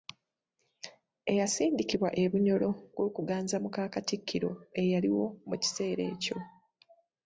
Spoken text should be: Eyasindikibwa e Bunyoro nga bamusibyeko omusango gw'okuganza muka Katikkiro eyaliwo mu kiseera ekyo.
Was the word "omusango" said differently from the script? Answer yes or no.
yes